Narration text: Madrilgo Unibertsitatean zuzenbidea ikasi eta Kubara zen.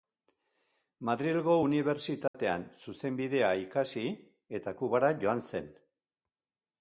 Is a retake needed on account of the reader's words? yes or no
yes